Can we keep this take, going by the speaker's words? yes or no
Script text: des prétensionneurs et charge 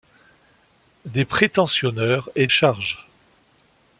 yes